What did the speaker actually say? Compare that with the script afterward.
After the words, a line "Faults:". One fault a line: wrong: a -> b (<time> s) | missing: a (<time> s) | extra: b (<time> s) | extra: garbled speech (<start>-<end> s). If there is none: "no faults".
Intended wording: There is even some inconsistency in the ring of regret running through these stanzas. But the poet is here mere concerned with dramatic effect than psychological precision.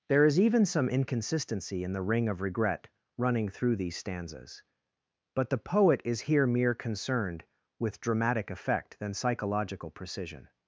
There is even some inconsistency in the ring of regret running through these stanzas. But the poet is here mere concerned with dramatic effect than psychological precision.
Faults:
no faults